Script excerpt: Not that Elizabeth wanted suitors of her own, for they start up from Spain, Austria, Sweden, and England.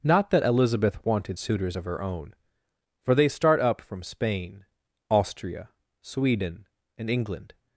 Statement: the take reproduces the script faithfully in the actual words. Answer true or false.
true